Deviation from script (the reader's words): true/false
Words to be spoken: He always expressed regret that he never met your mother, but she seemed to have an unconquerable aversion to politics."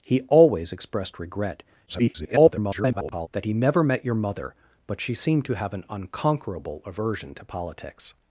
true